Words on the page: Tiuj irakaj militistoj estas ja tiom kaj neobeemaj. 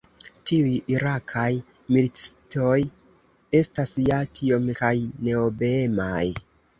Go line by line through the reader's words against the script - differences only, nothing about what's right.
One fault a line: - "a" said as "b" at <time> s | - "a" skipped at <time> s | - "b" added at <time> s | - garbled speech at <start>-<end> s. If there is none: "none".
none